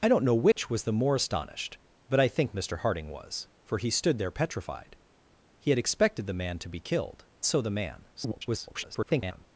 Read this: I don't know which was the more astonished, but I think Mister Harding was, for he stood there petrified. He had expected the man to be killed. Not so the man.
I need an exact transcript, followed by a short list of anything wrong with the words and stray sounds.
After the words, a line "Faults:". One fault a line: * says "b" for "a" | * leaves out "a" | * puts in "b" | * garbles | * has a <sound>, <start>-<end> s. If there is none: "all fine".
I don't know which was the more astonished, but I think Mister Harding was, for he stood there petrified. He had expected the man to be killed. So the man. [garbled]
Faults:
* has a dropout, 0.5-0.6 s
* leaves out "Not"
* garbles